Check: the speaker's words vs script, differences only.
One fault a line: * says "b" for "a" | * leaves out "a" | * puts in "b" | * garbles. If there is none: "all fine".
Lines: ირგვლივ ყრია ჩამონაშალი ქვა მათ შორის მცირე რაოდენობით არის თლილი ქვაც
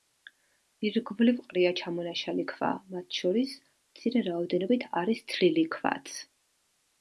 all fine